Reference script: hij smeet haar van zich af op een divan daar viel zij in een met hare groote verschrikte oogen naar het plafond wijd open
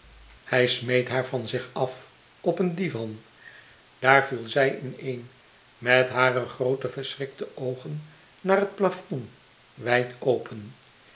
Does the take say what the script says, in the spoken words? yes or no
yes